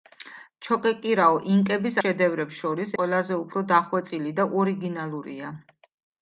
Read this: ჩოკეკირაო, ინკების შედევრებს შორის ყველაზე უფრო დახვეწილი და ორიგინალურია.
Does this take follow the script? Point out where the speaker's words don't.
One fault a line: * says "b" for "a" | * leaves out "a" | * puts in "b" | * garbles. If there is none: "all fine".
all fine